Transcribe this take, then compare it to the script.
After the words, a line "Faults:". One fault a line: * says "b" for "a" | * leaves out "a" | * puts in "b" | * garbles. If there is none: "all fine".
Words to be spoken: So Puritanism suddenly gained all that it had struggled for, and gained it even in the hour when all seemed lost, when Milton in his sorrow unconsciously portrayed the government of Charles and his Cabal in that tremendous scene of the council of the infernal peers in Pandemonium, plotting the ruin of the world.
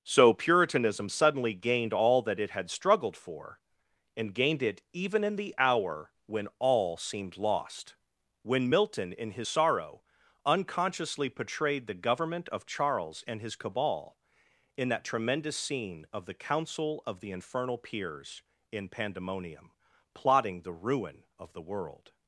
So Puritanism suddenly gained all that it had struggled for, and gained it even in the hour when all seemed lost, when Milton in his sorrow unconsciously portrayed the government of Charles and his Cabal in that tremendous scene of the council of the infernal peers in Pandemonium, plotting the ruin of the world.
Faults:
all fine